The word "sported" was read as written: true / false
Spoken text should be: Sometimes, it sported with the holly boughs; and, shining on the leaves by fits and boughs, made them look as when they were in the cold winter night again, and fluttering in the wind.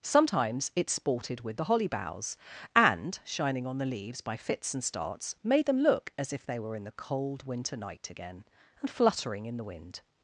true